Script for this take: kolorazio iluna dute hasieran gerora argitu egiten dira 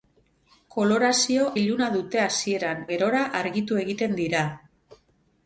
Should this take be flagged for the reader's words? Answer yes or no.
no